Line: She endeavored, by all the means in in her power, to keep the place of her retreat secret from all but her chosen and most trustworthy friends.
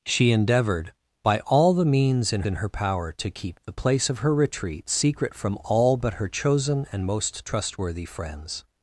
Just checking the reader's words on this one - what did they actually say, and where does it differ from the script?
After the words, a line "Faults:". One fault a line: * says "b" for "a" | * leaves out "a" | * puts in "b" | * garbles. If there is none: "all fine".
She endeavored, by all the means in in her power, to keep the place of her retreat secret from all but her chosen and most trustworthy friends.
Faults:
all fine